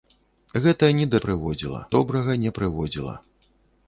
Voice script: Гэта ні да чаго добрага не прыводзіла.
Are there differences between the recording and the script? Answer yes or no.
yes